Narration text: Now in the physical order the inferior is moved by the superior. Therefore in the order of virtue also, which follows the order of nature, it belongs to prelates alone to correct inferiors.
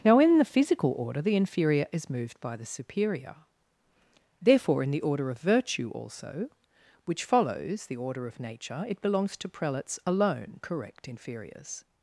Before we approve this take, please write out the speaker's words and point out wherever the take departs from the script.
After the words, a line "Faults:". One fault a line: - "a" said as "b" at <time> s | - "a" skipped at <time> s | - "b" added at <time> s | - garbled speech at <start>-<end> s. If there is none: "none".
Now in the physical order the inferior is moved by the superior. Therefore in the order of virtue also, which follows the order of nature, it belongs to prelates alone correct inferiors.
Faults:
- "to" skipped at 10.6 s